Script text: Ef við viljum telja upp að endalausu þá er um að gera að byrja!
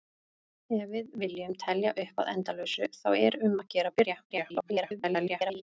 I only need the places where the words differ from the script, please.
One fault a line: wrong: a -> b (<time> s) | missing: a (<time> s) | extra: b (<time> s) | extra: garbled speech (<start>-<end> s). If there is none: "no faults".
extra: garbled speech (4.3-5.6 s)